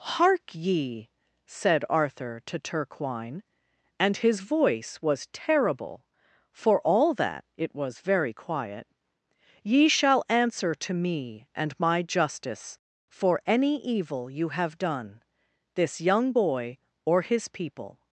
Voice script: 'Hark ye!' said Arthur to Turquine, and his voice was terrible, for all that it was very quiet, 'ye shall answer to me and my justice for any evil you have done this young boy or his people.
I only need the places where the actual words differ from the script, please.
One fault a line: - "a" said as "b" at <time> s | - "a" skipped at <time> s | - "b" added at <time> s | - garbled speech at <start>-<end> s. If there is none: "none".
none